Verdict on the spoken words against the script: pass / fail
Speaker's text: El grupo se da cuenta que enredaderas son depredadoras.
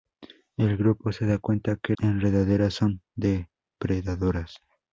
pass